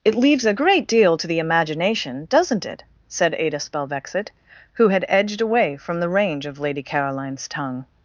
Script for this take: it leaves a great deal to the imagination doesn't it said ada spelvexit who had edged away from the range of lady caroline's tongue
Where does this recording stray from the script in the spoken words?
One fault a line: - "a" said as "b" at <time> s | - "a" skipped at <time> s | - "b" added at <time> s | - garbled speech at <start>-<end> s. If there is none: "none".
none